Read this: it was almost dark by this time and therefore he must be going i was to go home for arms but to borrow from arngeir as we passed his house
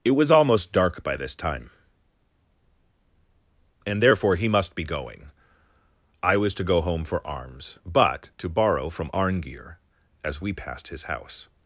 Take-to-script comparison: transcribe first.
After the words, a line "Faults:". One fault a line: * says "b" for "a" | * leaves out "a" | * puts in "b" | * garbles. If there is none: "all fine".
it was almost dark by this time and therefore he must be going i was to go home for arms but to borrow from arngeir as we passed his house
Faults:
all fine